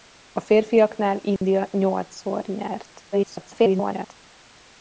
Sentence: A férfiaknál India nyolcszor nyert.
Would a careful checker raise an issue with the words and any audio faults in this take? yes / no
yes